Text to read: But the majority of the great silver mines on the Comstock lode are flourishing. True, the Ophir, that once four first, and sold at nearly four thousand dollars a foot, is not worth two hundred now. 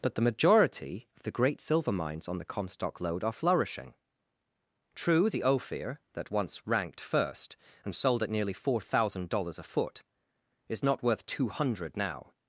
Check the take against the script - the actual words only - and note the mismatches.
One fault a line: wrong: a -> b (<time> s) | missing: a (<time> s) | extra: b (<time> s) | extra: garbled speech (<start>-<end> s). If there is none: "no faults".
wrong: four -> ranked (6.6 s)